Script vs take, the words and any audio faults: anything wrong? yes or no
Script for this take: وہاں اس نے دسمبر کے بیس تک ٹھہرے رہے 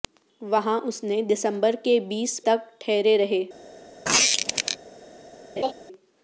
yes